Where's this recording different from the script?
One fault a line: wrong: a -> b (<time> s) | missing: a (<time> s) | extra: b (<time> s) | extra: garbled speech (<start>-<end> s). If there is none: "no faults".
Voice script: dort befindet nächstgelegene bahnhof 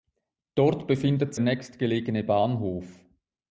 no faults